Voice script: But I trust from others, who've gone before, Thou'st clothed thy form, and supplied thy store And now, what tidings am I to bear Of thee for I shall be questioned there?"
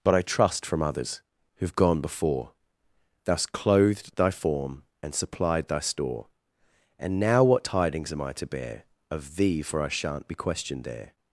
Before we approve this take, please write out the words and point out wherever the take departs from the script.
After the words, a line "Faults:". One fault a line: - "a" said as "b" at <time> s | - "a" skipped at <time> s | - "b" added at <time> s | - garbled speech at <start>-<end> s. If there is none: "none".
But I trust from others, who've gone before, Thou'st clothed thy form, and supplied thy store And now, what tidings am I to bear Of thee for I shan't be questioned there?"
Faults:
- "shall" said as "shan't" at 9.9 s